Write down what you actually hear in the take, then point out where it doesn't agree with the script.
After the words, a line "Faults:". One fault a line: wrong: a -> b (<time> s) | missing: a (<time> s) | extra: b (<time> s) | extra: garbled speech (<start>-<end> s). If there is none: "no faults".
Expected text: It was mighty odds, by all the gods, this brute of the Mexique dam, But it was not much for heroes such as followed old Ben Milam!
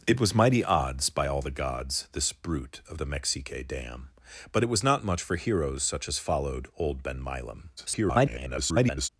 It was mighty odds, by all the gods, this brute of the Mexique dam, But it was not much for heroes such as followed old Ben Milam! [garbled]
Faults:
extra: garbled speech (7.8-9.1 s)